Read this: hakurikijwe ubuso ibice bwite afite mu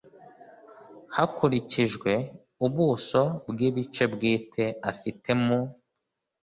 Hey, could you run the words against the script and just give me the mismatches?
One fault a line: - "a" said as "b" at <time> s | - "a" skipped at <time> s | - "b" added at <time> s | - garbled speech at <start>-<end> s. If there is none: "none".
- "bw" added at 3.5 s